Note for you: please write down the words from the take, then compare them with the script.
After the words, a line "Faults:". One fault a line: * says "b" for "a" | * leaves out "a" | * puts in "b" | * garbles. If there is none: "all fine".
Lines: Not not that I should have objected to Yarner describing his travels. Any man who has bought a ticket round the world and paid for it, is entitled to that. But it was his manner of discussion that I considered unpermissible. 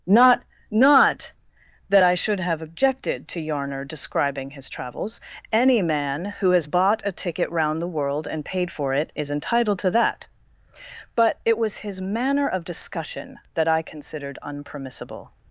Not not that I should have objected to Yarner describing his travels. Any man who has bought a ticket round the world and paid for it, is entitled to that. But it was his manner of discussion that I considered unpermissible.
Faults:
all fine